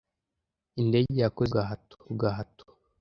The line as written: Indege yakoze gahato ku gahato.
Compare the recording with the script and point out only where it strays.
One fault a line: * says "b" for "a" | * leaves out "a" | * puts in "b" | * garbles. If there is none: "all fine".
all fine